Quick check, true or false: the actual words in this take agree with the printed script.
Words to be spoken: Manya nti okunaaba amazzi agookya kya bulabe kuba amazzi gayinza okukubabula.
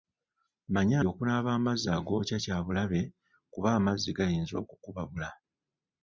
false